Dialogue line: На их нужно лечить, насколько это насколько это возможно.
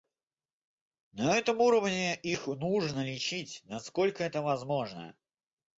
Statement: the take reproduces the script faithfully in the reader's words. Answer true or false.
false